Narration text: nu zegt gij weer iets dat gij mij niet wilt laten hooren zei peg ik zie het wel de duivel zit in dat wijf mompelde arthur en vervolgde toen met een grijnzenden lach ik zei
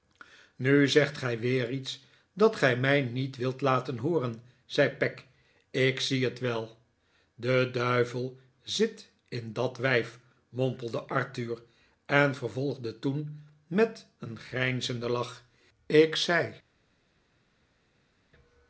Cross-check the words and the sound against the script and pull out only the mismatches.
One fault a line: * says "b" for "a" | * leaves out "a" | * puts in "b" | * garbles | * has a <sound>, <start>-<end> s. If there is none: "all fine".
all fine